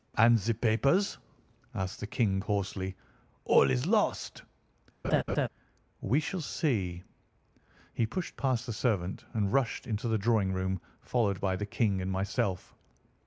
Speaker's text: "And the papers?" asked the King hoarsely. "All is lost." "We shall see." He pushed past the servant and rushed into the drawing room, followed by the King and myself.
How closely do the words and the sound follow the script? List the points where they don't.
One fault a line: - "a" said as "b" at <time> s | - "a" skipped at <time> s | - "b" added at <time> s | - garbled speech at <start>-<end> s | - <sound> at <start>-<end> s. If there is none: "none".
- laugh at 5.0-5.5 s